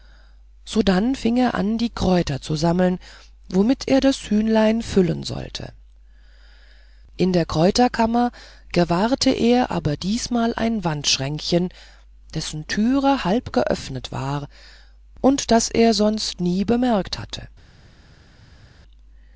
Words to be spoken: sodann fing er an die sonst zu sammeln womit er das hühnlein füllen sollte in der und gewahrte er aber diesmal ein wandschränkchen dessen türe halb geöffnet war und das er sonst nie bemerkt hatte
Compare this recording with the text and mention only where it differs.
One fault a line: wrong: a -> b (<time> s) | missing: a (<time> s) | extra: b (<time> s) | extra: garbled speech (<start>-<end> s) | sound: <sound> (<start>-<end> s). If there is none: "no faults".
wrong: sonst -> kräuter (1.9 s)
wrong: und -> kräuterkammer (7.4 s)